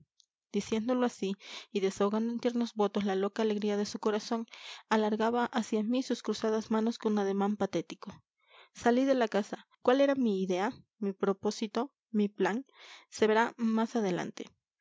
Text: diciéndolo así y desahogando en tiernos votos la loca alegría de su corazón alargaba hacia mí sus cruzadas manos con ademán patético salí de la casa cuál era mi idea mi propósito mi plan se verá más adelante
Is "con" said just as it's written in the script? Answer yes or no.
yes